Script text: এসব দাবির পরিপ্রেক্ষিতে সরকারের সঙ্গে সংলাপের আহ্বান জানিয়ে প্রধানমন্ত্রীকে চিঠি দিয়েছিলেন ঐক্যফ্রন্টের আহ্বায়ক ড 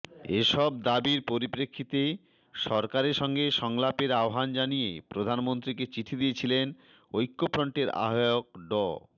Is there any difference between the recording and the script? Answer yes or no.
no